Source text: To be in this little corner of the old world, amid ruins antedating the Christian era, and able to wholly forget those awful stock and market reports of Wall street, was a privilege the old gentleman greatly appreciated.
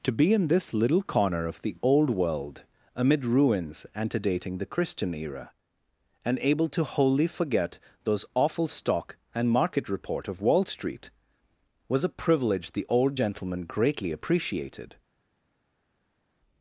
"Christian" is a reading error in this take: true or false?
false